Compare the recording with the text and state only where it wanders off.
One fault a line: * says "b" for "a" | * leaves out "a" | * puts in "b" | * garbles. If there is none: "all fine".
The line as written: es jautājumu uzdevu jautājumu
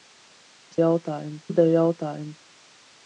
all fine